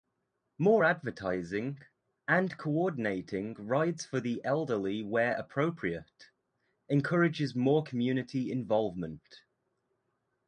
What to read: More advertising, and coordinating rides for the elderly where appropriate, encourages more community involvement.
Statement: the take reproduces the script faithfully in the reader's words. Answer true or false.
true